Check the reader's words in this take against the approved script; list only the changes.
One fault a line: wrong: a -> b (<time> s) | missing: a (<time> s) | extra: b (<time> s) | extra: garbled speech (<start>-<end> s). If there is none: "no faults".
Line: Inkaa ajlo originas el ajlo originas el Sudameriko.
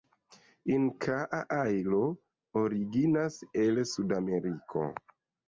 missing: ajlo originas el (3.8 s)